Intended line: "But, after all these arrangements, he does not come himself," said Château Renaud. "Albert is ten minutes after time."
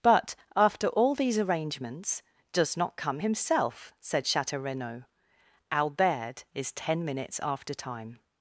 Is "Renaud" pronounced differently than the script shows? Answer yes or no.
no